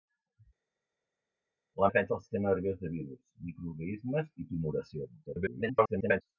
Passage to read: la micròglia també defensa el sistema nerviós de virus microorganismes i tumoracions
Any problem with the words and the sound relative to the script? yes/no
yes